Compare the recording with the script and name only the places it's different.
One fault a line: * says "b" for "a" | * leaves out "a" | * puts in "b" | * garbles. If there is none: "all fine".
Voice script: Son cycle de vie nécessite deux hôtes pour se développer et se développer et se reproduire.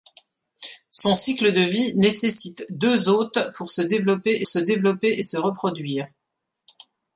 all fine